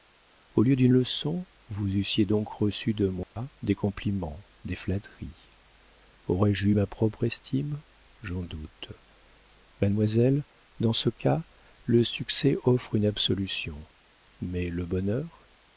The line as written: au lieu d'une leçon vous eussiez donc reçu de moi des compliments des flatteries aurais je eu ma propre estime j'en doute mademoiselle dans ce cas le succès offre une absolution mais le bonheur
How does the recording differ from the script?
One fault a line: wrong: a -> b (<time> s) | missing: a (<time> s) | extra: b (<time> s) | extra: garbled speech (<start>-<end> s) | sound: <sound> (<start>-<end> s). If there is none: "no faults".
sound: dropout (3.2-3.4 s)